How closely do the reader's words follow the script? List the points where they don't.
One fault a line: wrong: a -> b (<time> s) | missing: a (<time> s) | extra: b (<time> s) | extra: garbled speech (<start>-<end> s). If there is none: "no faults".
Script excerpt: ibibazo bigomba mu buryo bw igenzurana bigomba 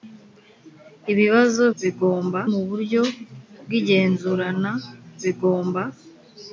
no faults